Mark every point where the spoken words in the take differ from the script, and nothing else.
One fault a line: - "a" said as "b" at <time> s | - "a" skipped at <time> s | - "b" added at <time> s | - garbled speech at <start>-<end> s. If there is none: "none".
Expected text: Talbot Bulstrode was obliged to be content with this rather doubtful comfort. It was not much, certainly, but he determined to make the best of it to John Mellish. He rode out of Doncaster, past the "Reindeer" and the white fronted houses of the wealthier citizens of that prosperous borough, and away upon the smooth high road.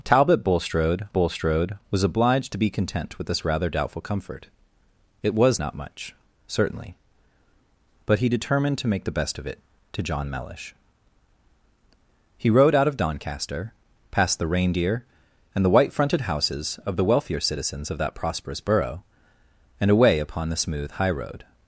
- "Bulstrode" added at 1.1 s